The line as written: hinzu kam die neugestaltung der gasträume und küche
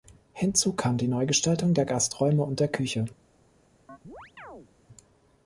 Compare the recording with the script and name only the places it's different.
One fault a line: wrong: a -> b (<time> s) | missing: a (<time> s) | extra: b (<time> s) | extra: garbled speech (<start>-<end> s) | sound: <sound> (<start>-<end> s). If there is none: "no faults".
extra: der (2.6 s)
sound: chirp (3.9-4.7 s)